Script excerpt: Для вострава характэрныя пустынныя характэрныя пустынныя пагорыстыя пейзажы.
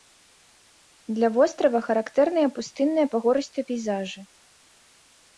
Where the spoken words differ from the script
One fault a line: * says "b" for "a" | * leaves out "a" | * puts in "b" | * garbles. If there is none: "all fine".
* leaves out "характэрныя пустынныя"